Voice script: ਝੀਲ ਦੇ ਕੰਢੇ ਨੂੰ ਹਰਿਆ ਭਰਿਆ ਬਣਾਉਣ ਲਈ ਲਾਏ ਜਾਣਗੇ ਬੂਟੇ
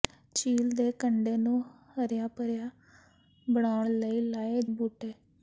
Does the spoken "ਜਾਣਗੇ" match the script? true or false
false